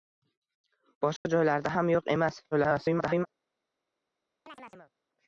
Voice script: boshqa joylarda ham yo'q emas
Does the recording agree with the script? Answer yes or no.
no